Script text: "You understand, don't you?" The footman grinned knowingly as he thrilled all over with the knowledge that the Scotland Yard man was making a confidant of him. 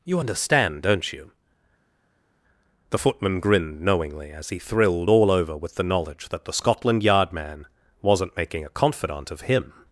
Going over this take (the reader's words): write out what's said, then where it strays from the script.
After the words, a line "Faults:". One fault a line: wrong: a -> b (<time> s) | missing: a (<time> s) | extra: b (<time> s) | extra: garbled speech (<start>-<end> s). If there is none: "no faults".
"You understand, don't you?" The footman grinned knowingly as he thrilled all over with the knowledge that the Scotland Yard man wasn't making a confidant of him.
Faults:
wrong: was -> wasn't (8.0 s)